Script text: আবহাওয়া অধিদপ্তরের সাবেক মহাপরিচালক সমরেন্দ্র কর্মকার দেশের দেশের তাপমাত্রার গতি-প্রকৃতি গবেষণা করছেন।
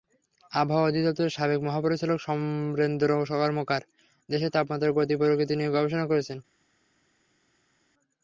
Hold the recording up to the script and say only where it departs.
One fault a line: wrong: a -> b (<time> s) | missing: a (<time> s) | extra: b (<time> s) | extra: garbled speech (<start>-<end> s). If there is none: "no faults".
missing: দেশের (4.5 s)
extra: নিয়ে (5.5 s)